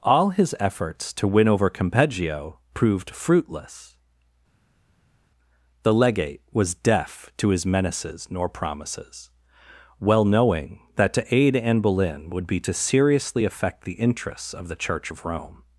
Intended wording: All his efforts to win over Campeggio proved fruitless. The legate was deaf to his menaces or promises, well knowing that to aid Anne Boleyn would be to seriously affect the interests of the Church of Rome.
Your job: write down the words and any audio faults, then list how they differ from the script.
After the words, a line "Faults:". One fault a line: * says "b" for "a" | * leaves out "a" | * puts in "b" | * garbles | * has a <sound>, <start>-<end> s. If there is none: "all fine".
All his efforts to win over Campeggio proved fruitless. The legate was deaf to his menaces nor promises, well knowing that to aid Anne Boleyn would be to seriously affect the interests of the Church of Rome.
Faults:
* says "nor" for "or"